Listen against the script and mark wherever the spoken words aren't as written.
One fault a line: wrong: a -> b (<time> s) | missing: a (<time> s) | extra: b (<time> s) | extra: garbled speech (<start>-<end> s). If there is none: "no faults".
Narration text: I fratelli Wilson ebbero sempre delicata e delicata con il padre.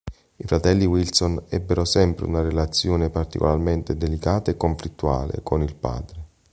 extra: una relazione particolarmente (2.3 s)
wrong: delicata -> conflittuale (4.6 s)